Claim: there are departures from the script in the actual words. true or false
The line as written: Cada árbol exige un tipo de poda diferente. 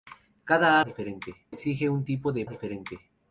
true